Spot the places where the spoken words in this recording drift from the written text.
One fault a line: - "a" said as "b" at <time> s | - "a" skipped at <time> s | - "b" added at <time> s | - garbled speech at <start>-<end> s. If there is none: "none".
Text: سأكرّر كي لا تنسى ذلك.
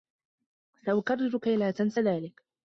none